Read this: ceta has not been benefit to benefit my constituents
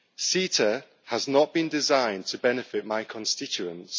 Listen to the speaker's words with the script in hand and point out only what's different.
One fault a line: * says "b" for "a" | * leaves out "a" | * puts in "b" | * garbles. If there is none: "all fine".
* says "designed" for "benefit"